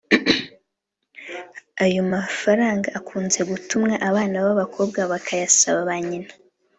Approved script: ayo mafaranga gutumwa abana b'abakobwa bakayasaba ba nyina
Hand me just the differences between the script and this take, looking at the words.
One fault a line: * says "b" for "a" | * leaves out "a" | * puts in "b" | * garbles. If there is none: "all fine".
* puts in "akunze"